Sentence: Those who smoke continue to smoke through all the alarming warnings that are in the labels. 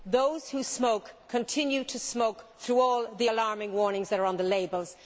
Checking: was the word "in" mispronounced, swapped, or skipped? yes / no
yes